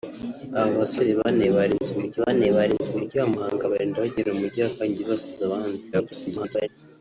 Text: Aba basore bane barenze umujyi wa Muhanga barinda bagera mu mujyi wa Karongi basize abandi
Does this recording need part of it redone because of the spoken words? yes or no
yes